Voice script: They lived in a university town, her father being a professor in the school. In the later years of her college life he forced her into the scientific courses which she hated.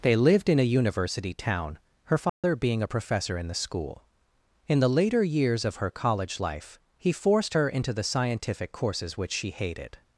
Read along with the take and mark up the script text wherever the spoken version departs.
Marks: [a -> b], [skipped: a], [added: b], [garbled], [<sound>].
They lived in a university town, her father [dropout] being a professor in the school. In the later years of her college life he forced her into the scientific courses which she hated.